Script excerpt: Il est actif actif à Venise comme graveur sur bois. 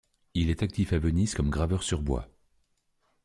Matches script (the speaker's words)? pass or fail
fail